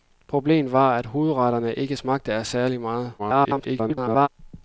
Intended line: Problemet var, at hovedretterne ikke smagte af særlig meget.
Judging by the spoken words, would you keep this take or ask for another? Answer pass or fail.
fail